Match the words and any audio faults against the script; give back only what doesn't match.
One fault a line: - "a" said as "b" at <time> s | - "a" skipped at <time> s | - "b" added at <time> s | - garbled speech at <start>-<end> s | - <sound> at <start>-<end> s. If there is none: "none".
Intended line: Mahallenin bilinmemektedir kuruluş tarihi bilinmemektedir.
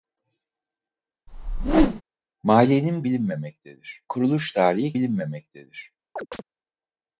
- whoosh at 1.3-2.0 s
- chirp at 6.2-6.4 s